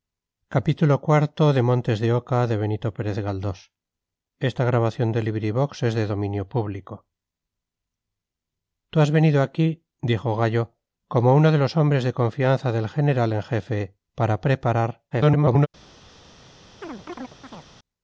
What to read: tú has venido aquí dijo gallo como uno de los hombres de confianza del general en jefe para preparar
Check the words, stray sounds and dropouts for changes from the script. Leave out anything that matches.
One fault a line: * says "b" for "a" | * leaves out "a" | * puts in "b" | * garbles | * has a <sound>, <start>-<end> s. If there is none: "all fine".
* garbles
* has a chirp, 16.8-17.7 s